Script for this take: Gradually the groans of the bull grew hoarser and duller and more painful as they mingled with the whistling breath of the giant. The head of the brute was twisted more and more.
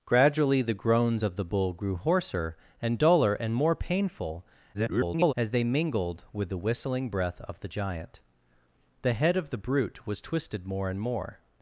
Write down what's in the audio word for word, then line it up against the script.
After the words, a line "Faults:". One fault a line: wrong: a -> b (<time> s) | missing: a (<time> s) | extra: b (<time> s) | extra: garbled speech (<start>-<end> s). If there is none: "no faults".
Gradually the groans of the bull grew hoarser and duller and more painful [garbled] as they mingled with the whistling breath of the giant. The head of the brute was twisted more and more.
Faults:
extra: garbled speech (4.7-5.3 s)